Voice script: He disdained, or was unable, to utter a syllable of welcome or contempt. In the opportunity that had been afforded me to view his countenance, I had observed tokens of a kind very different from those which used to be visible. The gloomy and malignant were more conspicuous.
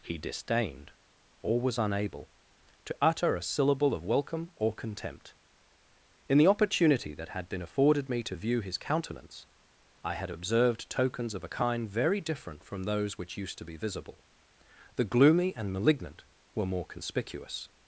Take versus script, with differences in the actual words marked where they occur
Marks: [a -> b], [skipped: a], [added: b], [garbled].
He disdained, or was unable, to utter a syllable of welcome or contempt. In the opportunity that had been afforded me to view his countenance, I had observed tokens of a kind very different from those which used to be visible. The gloomy and malignant were more conspicuous.